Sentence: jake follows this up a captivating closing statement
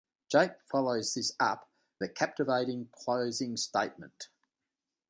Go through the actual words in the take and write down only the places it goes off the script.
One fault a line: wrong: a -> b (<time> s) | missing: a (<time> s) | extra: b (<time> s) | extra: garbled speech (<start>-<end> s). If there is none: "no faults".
no faults